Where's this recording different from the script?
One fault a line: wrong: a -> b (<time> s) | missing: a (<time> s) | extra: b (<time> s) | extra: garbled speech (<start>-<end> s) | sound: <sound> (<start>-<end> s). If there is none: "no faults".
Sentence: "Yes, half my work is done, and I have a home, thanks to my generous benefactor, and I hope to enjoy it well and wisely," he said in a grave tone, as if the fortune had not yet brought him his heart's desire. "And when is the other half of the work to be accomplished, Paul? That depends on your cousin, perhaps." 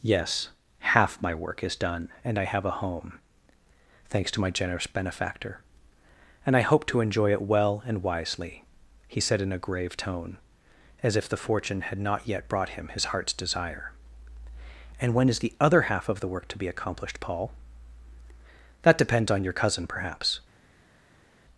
no faults